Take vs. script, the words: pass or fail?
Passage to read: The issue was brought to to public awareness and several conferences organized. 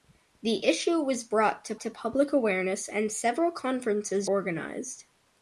pass